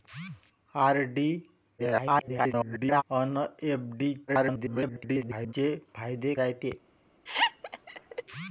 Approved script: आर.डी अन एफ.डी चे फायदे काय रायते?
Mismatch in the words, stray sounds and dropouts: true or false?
true